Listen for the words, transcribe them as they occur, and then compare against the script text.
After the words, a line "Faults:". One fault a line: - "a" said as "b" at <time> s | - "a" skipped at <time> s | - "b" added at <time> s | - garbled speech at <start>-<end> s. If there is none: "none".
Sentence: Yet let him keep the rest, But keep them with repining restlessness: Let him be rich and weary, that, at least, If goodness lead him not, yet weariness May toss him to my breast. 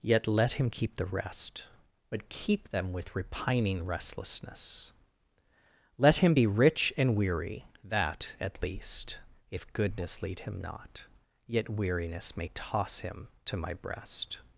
Yet let him keep the rest, But keep them with repining restlessness: Let him be rich and weary, that, at least, If goodness lead him not, yet weariness May toss him to my breast.
Faults:
none